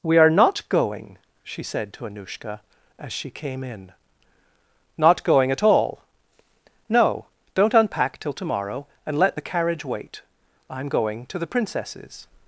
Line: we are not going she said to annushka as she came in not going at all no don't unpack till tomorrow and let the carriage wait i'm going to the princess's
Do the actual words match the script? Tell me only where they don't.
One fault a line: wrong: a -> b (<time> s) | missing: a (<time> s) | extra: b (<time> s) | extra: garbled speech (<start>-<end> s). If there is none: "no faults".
no faults